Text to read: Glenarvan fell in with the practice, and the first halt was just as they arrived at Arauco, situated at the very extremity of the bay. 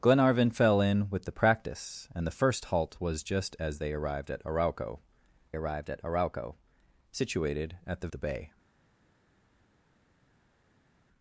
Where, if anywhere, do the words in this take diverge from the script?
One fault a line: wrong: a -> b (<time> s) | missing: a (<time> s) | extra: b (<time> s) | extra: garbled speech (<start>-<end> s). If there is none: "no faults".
wrong: situated -> arrived (5.5 s)
wrong: the very extremity of -> Arauco situated at the (6.0 s)